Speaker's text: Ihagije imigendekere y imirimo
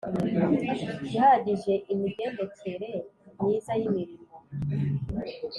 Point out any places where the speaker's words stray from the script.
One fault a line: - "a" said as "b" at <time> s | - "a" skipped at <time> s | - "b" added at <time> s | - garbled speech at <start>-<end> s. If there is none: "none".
- "myiza" added at 3.4 s